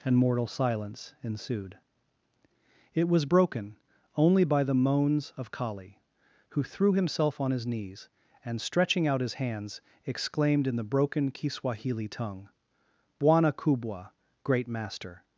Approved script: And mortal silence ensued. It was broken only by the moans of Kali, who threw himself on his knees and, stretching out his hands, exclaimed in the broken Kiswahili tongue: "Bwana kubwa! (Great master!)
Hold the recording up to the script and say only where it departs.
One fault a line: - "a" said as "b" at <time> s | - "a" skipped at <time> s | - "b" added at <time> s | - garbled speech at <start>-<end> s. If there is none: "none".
none